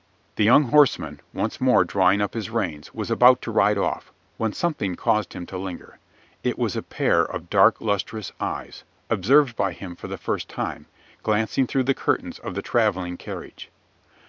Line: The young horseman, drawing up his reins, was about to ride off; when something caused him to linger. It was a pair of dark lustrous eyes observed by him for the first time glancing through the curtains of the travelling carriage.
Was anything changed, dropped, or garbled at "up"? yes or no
no